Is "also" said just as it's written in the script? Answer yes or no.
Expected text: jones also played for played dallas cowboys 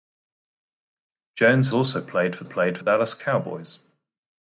yes